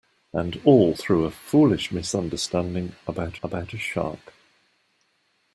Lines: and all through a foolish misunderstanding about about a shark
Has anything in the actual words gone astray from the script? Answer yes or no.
no